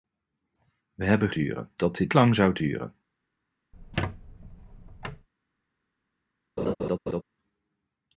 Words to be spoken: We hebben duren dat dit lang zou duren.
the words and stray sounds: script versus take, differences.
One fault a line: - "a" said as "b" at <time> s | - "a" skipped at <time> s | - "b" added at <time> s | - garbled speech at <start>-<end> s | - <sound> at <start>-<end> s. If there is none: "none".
- squeak at 3.7-5.3 s
- laugh at 6.6-7.2 s